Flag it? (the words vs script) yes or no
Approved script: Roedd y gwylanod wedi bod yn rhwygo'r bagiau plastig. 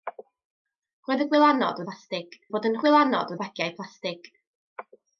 yes